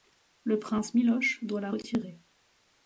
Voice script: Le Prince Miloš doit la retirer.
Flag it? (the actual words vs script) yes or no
no